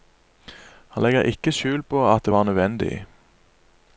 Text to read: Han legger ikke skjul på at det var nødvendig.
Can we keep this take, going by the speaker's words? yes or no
yes